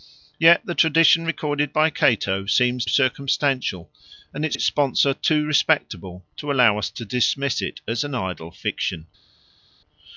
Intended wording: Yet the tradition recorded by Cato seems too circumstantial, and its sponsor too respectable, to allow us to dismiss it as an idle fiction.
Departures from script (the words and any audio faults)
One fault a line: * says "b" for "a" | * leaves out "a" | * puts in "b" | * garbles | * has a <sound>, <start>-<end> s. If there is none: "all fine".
* leaves out "too"
* puts in "its"